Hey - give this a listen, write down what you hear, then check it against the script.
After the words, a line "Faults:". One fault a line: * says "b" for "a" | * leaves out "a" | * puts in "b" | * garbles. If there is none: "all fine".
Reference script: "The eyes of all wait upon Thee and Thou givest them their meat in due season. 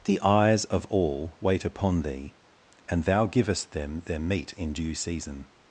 "The eyes of all wait upon Thee and Thou givest them their meat in due season.
Faults:
all fine